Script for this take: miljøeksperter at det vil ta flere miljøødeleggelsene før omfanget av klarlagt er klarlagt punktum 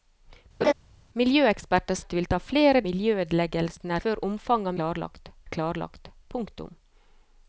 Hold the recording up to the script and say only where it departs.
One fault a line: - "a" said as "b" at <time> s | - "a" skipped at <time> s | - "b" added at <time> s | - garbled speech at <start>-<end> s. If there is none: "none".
none